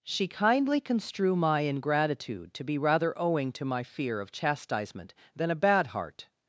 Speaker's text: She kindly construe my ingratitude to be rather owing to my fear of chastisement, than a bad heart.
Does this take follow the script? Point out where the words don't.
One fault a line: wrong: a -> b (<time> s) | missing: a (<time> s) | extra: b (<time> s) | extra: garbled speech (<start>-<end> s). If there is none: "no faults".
no faults